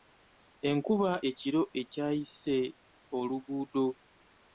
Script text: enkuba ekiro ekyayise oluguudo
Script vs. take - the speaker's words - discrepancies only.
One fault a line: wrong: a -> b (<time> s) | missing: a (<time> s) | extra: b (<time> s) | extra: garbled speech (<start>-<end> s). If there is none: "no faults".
no faults